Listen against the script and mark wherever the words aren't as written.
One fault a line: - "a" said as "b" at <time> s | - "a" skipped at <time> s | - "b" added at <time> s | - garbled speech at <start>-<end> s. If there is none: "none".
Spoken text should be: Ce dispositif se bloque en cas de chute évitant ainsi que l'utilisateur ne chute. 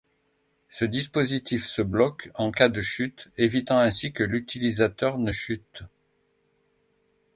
none